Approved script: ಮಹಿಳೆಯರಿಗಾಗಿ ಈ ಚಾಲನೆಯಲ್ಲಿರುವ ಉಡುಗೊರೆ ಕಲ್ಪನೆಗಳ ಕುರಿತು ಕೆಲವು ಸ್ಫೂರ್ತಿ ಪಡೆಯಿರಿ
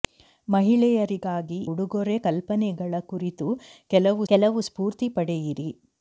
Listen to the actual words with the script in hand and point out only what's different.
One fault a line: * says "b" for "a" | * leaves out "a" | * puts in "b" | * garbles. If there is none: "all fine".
* leaves out "ಈ ಚಾಲನೆಯಲ್ಲಿರುವ"
* puts in "ಕೆಲವು"